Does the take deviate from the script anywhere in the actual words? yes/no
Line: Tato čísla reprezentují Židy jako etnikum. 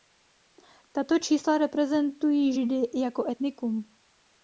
no